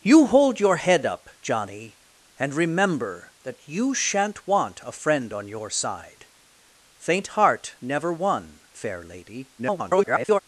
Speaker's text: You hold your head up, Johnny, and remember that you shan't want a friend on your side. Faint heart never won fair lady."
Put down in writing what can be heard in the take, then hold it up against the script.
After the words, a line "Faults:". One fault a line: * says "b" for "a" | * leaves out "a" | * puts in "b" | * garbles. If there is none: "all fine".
You hold your head up, Johnny, and remember that you shan't want a friend on your side. Faint heart never won fair lady." [garbled]
Faults:
* garbles